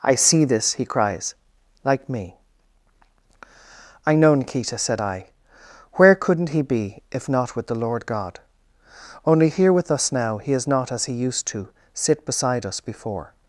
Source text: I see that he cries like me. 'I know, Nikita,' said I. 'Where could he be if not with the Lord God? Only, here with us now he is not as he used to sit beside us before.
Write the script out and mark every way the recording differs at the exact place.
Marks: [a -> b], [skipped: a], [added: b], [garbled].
I see [that -> this] he cries like me. 'I know, Nikita,' said I. 'Where [could -> couldn't] he be if not with the Lord God? Only, here with us now he is not as he used to sit beside us before.